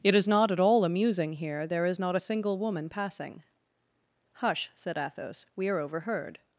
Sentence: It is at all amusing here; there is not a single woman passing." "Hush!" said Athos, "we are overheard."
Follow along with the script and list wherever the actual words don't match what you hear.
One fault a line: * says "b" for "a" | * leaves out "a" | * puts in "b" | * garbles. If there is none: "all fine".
* puts in "not"